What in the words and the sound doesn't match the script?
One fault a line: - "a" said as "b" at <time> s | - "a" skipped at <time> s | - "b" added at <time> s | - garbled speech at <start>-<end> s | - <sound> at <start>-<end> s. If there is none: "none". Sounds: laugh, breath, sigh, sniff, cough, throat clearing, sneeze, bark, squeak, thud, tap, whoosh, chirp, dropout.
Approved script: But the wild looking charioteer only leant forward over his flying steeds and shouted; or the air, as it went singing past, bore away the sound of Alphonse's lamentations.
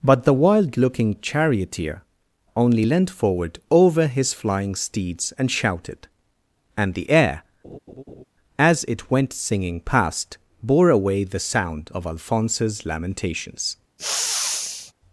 - "or" said as "and" at 6.8 s
- laugh at 7.6-8.2 s
- sniff at 14.0-14.9 s